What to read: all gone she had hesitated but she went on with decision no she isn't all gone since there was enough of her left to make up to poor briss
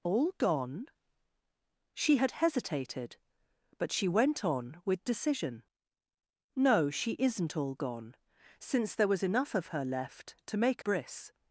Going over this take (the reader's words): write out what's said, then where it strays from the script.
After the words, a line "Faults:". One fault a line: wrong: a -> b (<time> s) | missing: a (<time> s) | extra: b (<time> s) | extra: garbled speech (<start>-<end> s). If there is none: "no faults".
all gone she had hesitated but she went on with decision no she isn't all gone since there was enough of her left to make briss
Faults:
missing: up to poor (10.8 s)